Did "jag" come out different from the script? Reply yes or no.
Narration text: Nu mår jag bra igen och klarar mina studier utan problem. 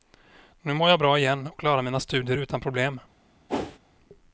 no